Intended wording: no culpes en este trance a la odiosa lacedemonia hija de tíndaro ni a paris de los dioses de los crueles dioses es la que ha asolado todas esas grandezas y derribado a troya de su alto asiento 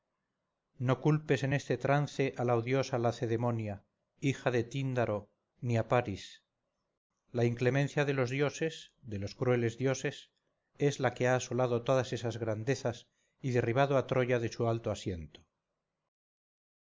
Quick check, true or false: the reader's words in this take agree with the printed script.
false